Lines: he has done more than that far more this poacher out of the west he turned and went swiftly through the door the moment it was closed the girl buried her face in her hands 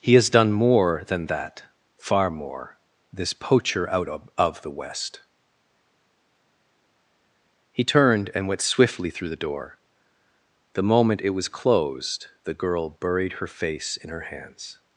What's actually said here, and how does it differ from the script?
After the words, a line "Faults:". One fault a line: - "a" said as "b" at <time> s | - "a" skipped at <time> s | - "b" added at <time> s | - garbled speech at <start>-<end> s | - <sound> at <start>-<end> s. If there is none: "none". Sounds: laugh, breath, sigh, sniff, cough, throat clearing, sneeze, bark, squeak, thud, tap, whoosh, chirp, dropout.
he has done more than that far more this poacher out of of the west he turned and went swiftly through the door the moment it was closed the girl buried her face in her hands
Faults:
- "of" added at 4.3 s